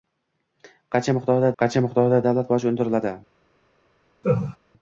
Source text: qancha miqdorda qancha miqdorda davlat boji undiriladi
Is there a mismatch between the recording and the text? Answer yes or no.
no